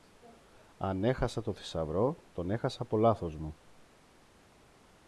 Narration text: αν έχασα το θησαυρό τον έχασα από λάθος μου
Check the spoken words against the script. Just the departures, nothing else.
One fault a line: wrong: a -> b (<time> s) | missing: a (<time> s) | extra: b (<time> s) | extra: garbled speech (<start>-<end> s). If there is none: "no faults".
no faults